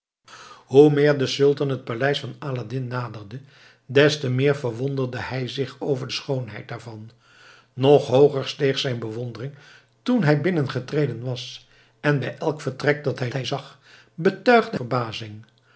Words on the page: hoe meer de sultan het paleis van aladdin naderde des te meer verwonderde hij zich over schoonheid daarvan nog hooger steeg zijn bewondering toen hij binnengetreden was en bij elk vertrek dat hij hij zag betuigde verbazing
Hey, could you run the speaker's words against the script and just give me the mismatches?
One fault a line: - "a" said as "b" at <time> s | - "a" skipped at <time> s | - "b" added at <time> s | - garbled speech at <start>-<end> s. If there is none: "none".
none